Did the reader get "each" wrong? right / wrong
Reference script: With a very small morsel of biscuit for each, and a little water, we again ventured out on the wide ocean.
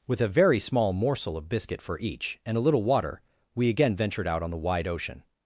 right